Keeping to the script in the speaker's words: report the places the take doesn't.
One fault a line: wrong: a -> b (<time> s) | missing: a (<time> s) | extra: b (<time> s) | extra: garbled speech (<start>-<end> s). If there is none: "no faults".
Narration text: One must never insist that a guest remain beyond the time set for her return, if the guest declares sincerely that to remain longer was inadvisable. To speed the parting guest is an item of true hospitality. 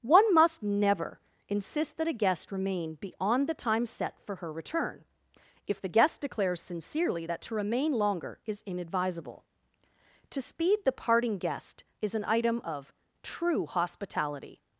wrong: was -> is (8.5 s)